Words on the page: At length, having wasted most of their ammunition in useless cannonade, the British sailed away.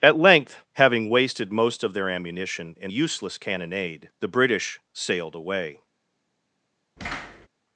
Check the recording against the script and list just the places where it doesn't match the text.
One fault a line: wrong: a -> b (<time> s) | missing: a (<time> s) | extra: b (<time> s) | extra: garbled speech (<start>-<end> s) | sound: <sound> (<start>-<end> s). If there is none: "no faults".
sound: thud (7.0-7.5 s)